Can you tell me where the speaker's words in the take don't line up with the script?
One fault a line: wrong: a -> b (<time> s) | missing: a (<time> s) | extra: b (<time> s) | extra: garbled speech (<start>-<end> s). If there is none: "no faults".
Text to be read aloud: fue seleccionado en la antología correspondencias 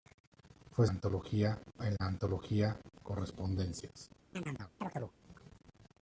wrong: seleccionado -> antología (0.9 s)